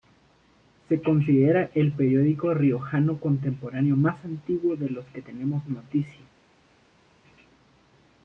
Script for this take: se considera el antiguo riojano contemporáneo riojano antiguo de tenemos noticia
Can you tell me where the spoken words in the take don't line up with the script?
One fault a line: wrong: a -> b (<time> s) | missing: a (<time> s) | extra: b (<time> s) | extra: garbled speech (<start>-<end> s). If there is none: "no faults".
wrong: antiguo -> periódico (1.9 s)
wrong: riojano -> más (4.0 s)
extra: los que (4.9 s)